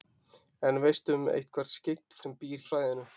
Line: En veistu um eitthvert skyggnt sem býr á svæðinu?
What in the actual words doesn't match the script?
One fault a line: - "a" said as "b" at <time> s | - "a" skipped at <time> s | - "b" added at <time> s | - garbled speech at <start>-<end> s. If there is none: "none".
none